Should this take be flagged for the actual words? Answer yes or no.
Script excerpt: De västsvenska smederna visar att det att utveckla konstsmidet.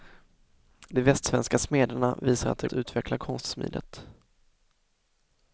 no